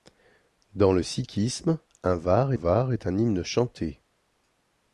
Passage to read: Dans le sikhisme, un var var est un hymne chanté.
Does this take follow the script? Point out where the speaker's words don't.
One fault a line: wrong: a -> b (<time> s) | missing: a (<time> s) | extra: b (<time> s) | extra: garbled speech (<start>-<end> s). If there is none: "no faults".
no faults